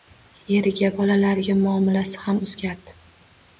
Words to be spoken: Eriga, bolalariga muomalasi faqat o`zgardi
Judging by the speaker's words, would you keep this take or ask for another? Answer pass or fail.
fail